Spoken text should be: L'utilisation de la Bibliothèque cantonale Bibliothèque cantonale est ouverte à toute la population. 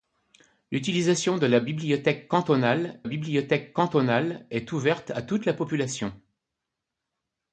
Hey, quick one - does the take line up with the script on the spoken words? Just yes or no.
yes